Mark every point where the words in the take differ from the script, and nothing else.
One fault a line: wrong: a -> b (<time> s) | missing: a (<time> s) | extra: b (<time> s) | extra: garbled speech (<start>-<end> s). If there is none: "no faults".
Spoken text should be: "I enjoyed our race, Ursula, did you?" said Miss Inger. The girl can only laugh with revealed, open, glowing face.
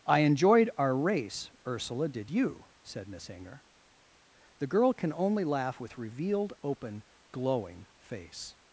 no faults